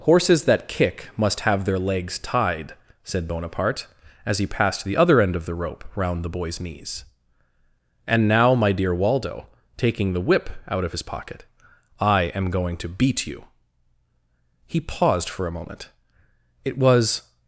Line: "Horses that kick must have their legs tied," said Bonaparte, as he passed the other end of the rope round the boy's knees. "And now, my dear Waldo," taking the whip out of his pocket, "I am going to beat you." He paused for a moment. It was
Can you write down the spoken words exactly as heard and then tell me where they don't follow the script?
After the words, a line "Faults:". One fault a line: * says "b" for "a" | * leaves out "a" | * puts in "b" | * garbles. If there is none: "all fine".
"Horses that kick must have their legs tied," said Bonaparte, as he passed the other end of the rope round the boy's knees. "And now, my dear Waldo," taking the whip out of his pocket, "I am going to beat you." He paused for a moment. It was
Faults:
all fine